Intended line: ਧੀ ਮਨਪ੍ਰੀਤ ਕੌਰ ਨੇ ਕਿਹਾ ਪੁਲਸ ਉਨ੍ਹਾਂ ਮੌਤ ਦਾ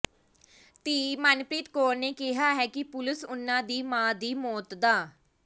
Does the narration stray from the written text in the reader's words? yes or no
yes